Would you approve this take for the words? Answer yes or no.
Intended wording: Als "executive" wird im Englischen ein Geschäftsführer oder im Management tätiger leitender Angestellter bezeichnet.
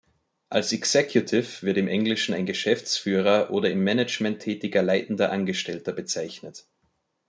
yes